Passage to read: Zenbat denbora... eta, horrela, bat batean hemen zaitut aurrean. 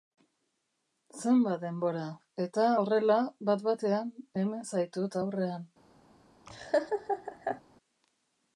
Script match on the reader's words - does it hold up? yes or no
yes